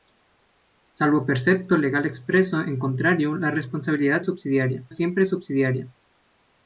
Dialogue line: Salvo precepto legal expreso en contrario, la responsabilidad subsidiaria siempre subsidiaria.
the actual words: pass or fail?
pass